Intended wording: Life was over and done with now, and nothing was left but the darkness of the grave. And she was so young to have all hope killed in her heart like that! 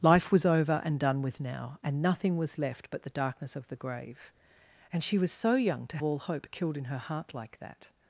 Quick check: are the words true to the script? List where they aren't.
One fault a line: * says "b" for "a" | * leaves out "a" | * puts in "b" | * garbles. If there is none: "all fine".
* leaves out "have"